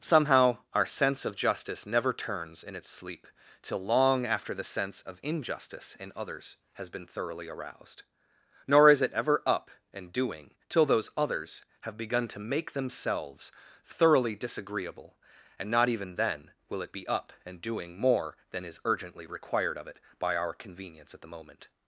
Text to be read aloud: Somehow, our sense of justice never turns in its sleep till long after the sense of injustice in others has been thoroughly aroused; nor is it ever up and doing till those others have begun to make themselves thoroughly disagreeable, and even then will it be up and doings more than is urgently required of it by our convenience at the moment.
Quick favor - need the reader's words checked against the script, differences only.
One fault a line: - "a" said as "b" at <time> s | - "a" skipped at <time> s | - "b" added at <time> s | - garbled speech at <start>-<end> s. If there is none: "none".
- "not" added at 15.7 s
- "doings" said as "doing" at 17.6 s